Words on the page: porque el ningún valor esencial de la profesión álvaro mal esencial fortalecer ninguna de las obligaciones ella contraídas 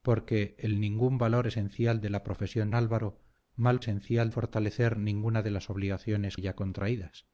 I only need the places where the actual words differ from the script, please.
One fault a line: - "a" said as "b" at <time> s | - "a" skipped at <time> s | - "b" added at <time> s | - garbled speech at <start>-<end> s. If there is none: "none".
none